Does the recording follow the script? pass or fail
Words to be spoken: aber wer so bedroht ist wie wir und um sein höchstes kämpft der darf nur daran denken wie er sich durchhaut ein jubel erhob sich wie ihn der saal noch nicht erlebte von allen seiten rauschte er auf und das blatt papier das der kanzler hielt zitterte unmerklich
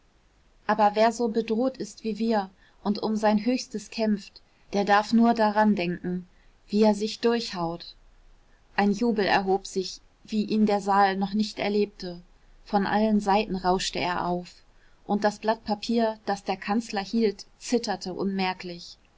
pass